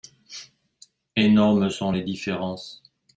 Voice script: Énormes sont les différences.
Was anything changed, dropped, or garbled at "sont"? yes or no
no